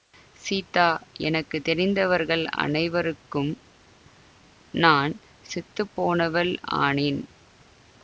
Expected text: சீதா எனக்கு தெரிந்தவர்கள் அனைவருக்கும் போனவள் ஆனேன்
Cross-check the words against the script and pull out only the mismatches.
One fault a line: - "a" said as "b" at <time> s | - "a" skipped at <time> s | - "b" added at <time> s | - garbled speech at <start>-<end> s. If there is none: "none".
- "நான் செத்து" added at 4.7 s